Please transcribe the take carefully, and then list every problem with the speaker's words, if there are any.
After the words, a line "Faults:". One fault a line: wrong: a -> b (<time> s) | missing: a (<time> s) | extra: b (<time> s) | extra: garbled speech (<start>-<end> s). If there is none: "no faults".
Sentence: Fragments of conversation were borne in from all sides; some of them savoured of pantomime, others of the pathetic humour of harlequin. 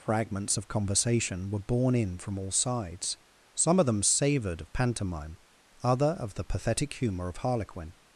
Fragments of conversation were borne in from all sides; some of them savoured of pantomime, other of the pathetic humour of harlequin.
Faults:
wrong: others -> other (5.8 s)